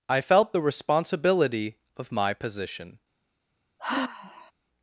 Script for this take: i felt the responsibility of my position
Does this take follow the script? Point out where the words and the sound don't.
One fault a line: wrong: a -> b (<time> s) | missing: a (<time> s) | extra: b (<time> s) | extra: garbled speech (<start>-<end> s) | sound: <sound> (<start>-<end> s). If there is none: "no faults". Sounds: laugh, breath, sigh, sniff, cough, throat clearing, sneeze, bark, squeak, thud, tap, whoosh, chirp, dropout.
sound: sigh (3.8-4.5 s)